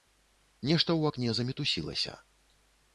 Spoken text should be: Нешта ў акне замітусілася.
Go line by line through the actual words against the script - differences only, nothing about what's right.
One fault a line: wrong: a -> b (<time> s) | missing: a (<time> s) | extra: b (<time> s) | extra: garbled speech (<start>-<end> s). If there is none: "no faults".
no faults